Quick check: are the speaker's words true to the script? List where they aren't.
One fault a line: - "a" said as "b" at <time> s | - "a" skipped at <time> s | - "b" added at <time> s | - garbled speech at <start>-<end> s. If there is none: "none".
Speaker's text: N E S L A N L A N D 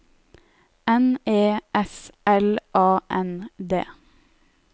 - "L A N" skipped at 3.5 s